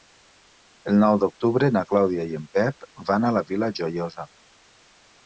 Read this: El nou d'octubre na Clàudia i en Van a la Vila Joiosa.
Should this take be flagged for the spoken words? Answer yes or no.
yes